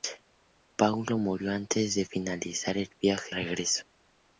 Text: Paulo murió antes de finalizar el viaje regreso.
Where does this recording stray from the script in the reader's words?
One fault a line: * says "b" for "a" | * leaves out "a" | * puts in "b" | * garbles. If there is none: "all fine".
all fine